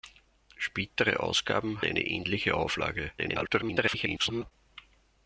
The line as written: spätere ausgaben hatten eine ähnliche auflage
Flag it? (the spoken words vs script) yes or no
yes